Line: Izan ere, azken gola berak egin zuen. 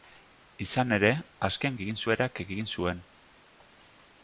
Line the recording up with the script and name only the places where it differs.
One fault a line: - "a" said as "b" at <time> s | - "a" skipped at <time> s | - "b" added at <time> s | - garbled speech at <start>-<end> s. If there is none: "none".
- "gola" said as "egin" at 1.7 s